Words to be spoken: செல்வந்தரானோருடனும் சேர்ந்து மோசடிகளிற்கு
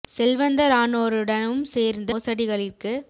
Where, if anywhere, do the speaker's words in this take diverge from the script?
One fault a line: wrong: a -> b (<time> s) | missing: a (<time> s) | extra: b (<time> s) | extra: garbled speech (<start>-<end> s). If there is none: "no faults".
no faults